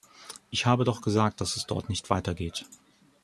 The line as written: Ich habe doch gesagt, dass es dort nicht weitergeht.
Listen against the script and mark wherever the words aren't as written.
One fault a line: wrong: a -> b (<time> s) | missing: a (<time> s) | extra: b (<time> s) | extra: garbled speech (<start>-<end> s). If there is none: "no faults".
no faults